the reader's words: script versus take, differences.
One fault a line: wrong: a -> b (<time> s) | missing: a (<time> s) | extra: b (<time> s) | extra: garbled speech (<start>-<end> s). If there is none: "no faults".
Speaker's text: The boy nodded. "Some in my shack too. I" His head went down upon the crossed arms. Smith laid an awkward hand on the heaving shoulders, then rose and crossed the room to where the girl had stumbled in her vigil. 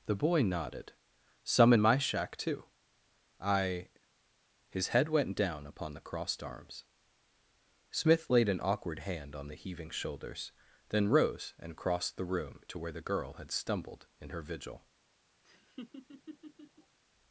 no faults